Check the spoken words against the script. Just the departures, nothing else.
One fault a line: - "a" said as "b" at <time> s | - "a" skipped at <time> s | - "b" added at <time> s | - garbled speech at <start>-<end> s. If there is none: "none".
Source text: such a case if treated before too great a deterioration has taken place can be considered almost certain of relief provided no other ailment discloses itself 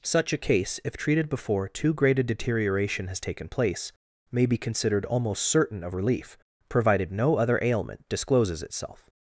- "can" said as "may" at 4.3 s